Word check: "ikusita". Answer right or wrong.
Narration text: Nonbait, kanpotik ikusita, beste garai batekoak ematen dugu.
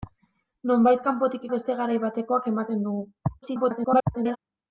wrong